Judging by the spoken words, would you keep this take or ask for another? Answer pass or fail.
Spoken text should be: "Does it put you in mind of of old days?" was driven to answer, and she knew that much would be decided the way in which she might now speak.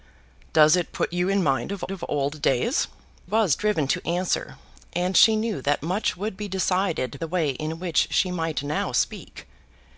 pass